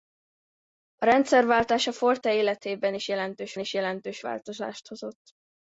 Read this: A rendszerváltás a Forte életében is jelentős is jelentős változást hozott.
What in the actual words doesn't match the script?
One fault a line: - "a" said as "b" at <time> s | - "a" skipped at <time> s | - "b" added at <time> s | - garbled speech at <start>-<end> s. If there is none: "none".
none